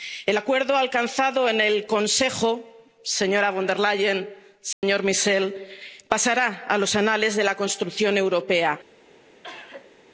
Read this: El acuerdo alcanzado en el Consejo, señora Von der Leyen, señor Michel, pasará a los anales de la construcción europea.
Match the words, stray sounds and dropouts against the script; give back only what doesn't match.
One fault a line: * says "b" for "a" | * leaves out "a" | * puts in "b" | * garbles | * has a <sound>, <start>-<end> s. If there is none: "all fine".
* has a dropout, 4.7-4.8 s
* has a cough, 9.4-10.0 s